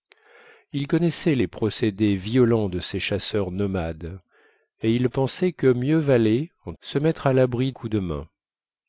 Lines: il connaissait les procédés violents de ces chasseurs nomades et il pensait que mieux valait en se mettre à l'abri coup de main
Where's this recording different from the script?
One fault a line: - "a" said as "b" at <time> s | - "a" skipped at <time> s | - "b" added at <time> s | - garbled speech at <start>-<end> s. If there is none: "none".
none